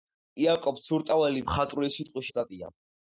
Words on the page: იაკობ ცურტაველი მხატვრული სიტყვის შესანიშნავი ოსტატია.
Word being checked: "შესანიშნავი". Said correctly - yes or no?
no